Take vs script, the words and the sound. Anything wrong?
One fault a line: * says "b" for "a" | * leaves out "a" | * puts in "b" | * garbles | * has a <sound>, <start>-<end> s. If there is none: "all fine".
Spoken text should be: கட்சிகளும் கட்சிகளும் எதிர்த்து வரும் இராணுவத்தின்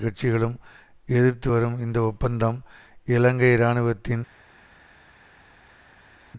* leaves out "கட்சிகளும்"
* puts in "இந்த ஒப்பந்தம் இலங்கை"